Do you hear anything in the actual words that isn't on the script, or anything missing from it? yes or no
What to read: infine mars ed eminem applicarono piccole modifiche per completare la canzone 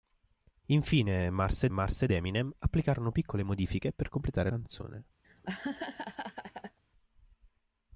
yes